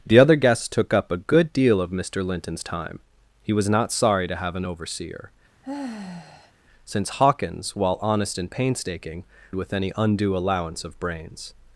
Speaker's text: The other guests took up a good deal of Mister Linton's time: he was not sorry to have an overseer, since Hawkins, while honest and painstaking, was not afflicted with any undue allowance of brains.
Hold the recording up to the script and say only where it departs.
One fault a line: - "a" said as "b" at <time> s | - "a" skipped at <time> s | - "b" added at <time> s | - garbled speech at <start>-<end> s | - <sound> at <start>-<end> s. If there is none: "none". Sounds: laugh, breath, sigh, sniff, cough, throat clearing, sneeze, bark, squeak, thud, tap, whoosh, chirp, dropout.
- sigh at 5.6-6.5 s
- "was not afflicted" skipped at 9.3 s